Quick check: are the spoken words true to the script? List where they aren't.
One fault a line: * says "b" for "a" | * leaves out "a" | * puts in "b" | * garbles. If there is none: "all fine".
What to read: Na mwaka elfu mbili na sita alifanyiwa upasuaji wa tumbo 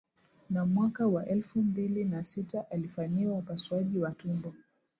* puts in "wa"